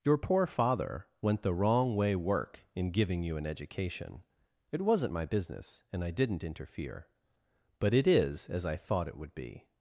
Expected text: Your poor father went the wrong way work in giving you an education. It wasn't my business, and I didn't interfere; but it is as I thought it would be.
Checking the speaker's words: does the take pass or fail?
pass